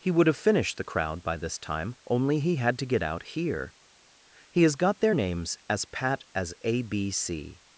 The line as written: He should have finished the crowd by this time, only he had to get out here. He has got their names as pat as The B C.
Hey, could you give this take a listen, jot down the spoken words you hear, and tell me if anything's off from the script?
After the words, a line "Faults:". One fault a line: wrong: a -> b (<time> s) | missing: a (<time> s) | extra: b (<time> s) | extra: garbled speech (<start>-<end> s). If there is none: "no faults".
He would have finished the crowd by this time, only he had to get out here. He has got their names as pat as A B C.
Faults:
wrong: should -> would (0.1 s)
wrong: The -> A (6.6 s)